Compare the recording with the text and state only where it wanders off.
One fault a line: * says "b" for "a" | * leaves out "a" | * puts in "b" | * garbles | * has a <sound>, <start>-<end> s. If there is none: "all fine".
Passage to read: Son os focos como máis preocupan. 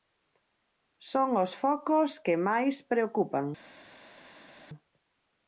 * says "que" for "como"